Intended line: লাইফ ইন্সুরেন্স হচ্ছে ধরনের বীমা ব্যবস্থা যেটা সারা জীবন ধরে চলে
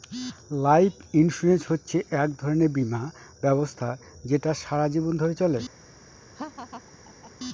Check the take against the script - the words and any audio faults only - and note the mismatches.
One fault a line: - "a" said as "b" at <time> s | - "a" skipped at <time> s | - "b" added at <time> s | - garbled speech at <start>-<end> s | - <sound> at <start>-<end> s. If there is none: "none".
- "এক" added at 2.1 s
- laugh at 6.4-7.3 s